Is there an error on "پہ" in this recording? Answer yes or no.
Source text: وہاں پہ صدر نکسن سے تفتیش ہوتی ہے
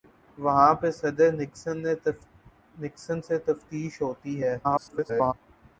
no